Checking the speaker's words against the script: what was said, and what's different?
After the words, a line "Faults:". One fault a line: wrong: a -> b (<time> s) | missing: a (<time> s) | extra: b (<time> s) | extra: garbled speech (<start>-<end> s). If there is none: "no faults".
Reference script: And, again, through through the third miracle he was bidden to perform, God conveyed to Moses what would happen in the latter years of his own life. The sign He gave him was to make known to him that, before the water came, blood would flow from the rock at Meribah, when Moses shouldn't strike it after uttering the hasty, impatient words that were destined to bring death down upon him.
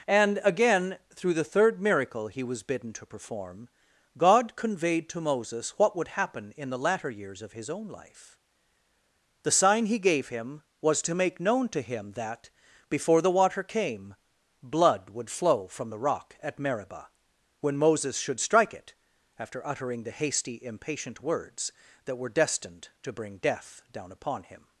And, again, through the third miracle he was bidden to perform, God conveyed to Moses what would happen in the latter years of his own life. The sign He gave him was to make known to him that, before the water came, blood would flow from the rock at Meribah, when Moses should strike it after uttering the hasty, impatient words that were destined to bring death down upon him.
Faults:
missing: through (1.3 s)
wrong: shouldn't -> should (18.2 s)